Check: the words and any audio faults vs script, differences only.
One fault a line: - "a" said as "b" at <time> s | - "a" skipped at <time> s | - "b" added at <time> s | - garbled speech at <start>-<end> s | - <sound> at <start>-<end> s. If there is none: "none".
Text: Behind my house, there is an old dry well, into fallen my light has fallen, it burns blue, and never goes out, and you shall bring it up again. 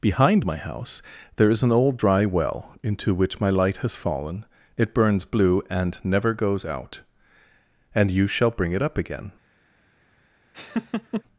- "fallen" said as "which" at 3.1 s
- laugh at 10.5-11.2 s